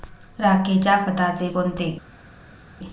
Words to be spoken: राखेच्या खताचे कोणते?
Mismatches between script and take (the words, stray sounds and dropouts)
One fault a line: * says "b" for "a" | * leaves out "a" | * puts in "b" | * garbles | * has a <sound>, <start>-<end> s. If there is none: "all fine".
all fine